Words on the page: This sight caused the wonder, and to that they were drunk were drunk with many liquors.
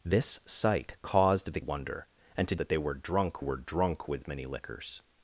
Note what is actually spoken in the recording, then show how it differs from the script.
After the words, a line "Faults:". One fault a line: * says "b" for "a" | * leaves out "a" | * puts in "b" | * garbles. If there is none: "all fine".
This sight caused the wonder, and to that they were drunk were drunk with many liquors.
Faults:
all fine